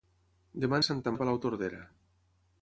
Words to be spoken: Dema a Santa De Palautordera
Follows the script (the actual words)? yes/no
yes